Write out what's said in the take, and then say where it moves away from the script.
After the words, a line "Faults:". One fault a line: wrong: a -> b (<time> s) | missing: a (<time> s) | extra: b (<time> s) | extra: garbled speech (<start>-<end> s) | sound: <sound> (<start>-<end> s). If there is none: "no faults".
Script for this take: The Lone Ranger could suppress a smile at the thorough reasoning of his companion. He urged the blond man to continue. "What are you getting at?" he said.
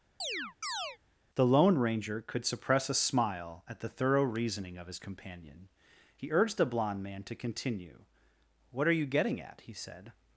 The Lone Ranger could suppress a smile at the thorough reasoning of his companion. He urged the blond man to continue. "What are you getting at?" he said.
Faults:
sound: chirp (0.2-1.0 s)